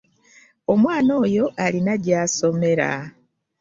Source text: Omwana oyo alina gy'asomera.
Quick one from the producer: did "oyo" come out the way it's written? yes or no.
yes